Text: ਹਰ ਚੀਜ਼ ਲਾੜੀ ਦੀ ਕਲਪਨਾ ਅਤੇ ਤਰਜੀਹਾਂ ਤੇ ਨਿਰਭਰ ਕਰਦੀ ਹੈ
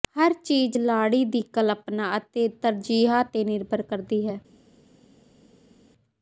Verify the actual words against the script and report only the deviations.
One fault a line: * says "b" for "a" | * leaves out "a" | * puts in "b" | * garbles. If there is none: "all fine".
all fine